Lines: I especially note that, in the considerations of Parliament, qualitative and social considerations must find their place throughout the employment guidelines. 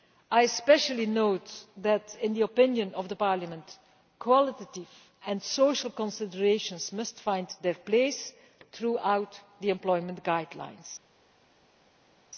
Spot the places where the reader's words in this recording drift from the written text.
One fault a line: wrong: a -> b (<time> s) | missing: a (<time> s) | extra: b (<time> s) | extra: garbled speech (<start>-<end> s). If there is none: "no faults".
wrong: considerations -> opinion (2.4 s)